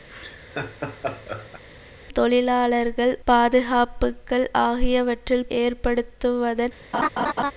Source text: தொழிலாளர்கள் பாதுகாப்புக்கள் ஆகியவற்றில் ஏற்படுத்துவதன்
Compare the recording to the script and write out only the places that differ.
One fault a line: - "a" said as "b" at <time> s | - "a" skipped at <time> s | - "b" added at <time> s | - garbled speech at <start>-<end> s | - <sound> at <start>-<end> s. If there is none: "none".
- laugh at 0.1-1.6 s
- laugh at 6.9-7.5 s